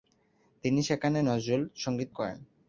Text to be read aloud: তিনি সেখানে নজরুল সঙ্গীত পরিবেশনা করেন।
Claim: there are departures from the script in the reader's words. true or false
true